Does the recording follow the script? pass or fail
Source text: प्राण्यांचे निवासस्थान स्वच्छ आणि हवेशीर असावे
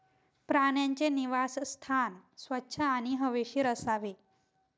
pass